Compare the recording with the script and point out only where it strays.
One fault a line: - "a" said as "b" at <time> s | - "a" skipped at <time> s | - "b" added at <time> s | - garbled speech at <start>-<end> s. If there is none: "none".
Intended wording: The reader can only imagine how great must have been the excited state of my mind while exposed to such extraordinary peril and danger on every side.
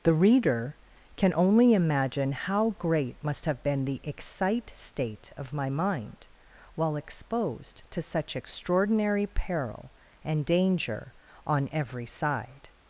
- "excited" said as "excite" at 4.0 s